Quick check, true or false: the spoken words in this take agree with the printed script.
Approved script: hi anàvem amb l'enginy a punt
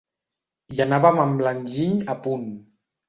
true